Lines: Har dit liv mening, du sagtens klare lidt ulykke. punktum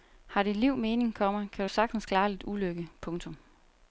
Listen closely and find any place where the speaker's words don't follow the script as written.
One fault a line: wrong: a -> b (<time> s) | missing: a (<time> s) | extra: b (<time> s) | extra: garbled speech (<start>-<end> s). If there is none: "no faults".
extra: komma kan (1.1 s)